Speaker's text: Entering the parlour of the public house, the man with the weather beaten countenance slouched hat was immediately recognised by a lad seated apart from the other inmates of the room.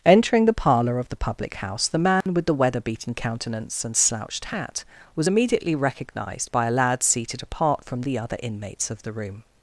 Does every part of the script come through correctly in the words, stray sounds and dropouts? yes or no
no